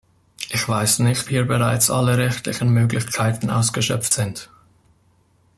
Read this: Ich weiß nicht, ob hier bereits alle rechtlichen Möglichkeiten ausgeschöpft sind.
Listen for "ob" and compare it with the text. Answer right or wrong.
wrong